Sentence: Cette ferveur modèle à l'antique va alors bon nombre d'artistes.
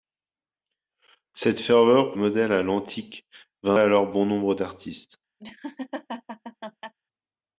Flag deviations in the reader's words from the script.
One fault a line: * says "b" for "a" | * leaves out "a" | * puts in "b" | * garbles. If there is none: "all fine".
all fine